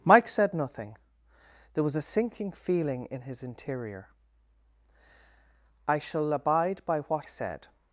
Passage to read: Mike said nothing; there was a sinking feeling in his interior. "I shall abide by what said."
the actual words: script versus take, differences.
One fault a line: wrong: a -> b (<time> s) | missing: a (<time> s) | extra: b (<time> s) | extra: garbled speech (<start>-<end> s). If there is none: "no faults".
no faults